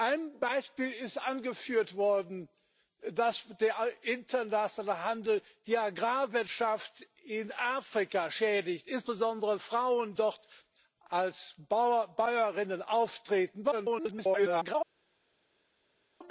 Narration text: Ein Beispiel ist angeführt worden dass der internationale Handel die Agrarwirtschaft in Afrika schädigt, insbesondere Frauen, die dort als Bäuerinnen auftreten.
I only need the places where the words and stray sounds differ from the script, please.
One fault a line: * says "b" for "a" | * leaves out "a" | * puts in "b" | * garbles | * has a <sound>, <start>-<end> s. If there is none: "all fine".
* leaves out "die"
* garbles